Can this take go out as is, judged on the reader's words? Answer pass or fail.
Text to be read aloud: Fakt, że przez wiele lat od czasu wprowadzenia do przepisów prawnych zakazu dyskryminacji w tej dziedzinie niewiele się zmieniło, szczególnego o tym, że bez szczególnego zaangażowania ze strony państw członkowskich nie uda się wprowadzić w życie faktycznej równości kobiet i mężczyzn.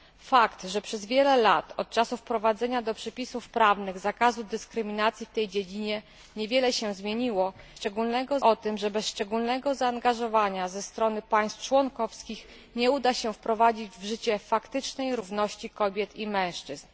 pass